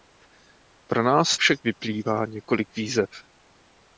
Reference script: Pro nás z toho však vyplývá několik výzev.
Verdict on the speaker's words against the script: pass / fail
fail